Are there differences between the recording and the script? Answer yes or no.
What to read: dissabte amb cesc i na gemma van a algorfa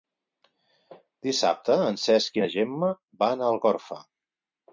yes